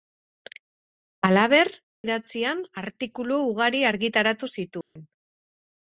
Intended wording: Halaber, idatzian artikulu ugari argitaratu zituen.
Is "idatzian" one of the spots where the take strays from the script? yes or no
no